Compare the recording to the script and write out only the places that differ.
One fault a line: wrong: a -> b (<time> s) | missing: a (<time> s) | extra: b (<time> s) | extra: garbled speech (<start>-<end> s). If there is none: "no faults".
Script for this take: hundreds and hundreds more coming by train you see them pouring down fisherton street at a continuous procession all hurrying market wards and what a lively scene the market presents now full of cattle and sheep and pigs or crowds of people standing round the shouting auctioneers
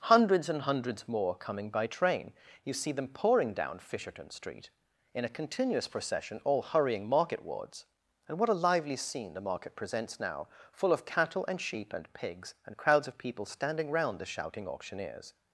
wrong: at -> in (5.1 s)
wrong: or -> and (12.7 s)